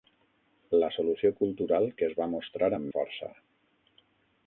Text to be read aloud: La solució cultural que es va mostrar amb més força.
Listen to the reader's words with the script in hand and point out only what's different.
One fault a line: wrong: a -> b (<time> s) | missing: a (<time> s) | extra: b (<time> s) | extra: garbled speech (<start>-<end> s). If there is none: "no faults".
missing: més (2.9 s)